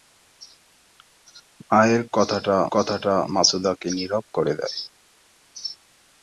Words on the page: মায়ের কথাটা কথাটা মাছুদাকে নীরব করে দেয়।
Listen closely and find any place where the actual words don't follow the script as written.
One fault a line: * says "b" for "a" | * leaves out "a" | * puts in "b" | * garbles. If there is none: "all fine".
all fine